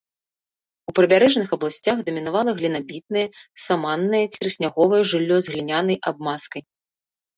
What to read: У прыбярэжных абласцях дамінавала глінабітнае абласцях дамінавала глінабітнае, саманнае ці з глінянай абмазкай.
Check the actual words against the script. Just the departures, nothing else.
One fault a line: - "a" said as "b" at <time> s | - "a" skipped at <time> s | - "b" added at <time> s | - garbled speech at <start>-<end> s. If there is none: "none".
- "абласцях дамінавала глінабітнае саманнае ці" said as "саманнае ці трысняговае жыллё" at 3.7 s